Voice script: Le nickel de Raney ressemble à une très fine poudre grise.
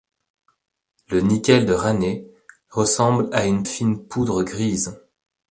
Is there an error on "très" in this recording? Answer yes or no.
yes